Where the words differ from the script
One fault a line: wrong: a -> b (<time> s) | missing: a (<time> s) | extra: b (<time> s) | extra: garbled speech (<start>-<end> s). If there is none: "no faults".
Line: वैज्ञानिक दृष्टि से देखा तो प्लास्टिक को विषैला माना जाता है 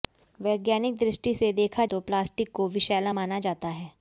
no faults